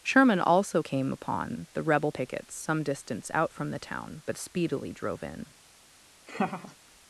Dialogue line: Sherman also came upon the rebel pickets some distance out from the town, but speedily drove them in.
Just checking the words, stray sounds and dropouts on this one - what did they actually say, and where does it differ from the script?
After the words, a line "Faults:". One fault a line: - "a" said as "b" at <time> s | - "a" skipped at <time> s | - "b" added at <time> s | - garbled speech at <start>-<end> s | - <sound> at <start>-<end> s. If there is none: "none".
Sherman also came upon the rebel pickets some distance out from the town, but speedily drove in.
Faults:
- "them" skipped at 5.2 s
- laugh at 6.3-6.8 s